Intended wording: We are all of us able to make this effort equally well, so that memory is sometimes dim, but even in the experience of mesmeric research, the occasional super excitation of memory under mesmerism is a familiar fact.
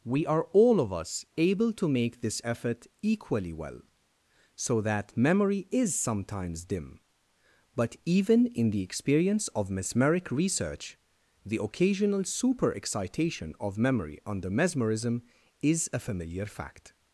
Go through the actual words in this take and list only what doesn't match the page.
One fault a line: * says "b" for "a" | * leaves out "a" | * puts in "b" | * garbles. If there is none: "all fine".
all fine